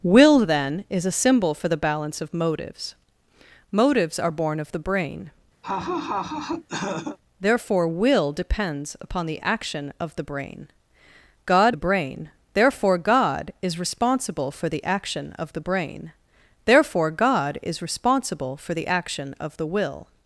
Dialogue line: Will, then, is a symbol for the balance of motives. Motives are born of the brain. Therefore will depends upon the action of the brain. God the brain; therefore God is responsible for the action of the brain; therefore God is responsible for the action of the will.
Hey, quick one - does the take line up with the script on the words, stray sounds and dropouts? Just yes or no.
no